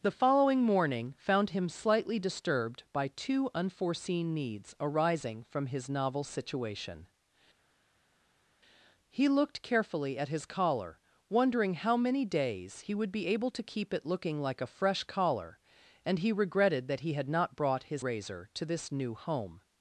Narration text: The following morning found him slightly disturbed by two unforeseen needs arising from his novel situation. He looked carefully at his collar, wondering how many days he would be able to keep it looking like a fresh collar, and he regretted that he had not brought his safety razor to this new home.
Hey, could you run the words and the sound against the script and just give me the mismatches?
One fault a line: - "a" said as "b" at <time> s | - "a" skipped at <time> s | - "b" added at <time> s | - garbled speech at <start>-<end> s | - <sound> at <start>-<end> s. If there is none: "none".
- "safety" skipped at 18.0 s